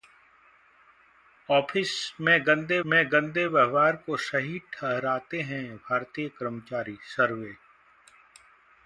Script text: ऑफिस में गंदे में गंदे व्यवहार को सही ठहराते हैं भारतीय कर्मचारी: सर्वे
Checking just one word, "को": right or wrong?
right